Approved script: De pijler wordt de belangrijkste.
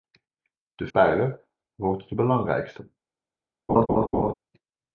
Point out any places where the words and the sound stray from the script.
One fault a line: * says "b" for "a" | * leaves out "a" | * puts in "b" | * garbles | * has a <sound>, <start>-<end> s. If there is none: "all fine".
* has a laugh, 3.7-4.3 s